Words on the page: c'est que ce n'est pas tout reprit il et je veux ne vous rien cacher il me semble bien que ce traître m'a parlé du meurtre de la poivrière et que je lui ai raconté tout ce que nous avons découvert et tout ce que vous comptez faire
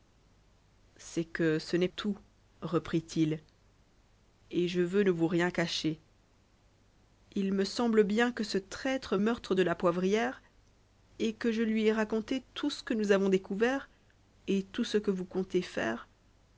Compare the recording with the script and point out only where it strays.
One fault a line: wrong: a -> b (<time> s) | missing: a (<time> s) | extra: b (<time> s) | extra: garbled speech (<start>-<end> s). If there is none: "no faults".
missing: pas (1.9 s)
missing: m'a parlé du (9.2 s)